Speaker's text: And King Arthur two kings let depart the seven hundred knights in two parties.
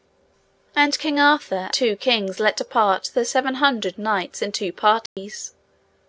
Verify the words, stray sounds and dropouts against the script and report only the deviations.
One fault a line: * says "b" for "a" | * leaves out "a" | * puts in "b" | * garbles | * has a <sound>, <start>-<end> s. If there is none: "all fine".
* has a dropout, 5.1-5.2 s